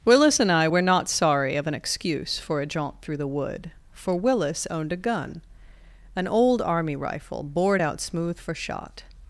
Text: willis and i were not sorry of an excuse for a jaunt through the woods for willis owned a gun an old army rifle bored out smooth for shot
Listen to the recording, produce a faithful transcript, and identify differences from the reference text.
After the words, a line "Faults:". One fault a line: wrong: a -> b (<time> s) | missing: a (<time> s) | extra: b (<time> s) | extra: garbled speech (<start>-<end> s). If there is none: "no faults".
willis and i were not sorry of an excuse for a jaunt through the wood for willis owned a gun an old army rifle bored out smooth for shot
Faults:
wrong: woods -> wood (3.3 s)